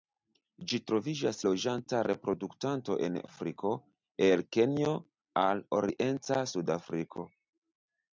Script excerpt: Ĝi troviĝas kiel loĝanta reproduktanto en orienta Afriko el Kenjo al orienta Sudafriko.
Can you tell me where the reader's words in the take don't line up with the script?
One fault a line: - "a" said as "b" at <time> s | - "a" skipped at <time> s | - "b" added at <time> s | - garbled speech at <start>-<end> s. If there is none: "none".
- "kiel" skipped at 1.4 s
- "orienta" skipped at 3.2 s